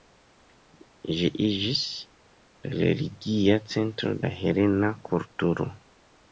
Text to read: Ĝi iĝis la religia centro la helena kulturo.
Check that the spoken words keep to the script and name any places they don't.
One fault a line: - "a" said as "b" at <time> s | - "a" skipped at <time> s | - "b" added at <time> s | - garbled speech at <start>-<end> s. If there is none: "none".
none